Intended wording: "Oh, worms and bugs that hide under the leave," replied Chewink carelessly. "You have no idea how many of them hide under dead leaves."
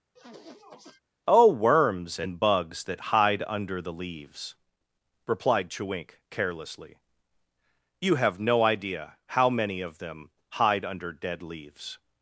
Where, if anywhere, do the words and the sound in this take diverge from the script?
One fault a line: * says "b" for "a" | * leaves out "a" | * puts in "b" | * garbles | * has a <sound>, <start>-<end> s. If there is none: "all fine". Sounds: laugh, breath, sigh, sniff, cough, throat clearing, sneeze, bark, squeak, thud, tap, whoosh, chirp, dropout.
* has a sniff, 0.2-1.0 s
* says "leaves" for "leave"